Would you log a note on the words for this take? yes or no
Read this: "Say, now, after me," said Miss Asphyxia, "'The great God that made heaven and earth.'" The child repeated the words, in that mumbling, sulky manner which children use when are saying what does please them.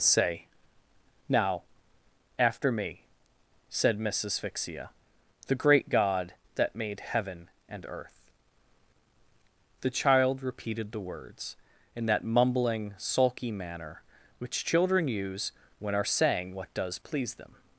no